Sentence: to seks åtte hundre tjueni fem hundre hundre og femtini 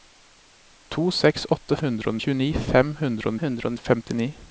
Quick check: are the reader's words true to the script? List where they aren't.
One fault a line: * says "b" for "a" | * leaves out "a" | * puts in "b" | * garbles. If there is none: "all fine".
all fine